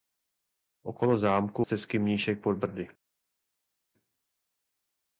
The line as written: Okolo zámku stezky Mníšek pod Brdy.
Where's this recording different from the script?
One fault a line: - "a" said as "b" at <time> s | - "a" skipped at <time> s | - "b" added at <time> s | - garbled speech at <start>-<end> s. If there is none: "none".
none